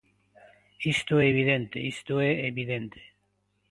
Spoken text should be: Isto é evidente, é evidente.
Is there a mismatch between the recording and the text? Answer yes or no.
yes